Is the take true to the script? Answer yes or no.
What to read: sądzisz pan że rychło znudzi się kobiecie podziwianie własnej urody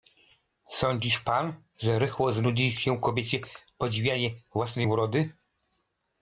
yes